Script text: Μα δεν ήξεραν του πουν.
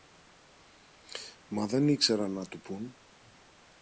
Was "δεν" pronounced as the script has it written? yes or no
yes